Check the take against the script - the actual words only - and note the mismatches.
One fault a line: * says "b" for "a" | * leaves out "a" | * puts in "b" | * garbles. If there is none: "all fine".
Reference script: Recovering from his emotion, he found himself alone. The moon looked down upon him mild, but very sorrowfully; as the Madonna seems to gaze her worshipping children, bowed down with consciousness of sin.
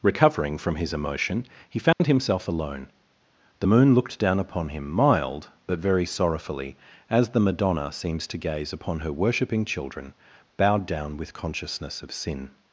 * puts in "upon"